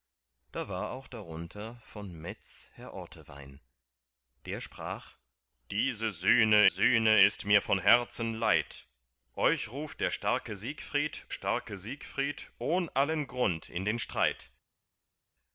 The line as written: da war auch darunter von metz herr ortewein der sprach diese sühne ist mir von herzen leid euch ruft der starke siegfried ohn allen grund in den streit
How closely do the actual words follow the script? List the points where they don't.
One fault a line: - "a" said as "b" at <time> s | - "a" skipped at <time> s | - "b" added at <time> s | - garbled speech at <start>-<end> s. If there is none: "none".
- "sühne" added at 6.7 s
- "starke siegfried" added at 11.3 s